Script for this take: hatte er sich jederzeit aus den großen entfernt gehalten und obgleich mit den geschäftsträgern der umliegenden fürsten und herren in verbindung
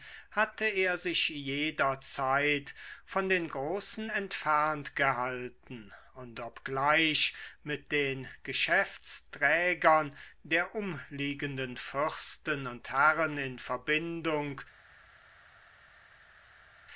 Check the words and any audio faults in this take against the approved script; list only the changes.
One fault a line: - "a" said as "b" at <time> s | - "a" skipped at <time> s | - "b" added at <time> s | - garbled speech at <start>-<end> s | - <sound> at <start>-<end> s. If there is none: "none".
- "aus" said as "von" at 3.0 s